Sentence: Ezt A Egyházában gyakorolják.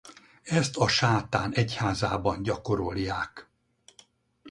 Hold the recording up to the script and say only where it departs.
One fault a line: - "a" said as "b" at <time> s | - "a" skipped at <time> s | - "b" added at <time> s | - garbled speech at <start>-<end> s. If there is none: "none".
- "Sátán" added at 0.9 s